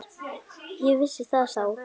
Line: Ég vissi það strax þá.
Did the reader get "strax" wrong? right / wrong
wrong